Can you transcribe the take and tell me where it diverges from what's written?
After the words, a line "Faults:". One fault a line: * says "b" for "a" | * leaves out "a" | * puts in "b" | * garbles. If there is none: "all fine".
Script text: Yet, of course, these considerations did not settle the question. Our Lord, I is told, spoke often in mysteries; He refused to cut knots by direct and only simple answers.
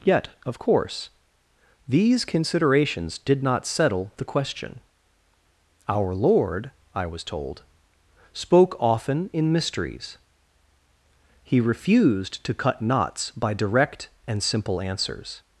Yet, of course, these considerations did not settle the question. Our Lord, I was told, spoke often in mysteries; He refused to cut knots by direct and simple answers.
Faults:
* says "was" for "is"
* leaves out "only"